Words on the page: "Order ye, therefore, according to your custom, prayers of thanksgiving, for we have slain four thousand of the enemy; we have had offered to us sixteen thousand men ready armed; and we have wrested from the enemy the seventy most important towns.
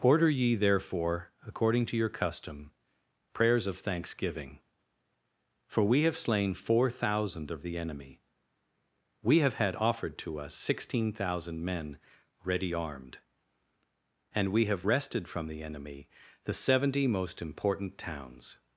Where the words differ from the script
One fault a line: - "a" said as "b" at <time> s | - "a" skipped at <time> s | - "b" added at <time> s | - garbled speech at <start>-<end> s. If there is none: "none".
none